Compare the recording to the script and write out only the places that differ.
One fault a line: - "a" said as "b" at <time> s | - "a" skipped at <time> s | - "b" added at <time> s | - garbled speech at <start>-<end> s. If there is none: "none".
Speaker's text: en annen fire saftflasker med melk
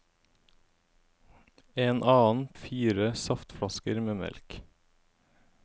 none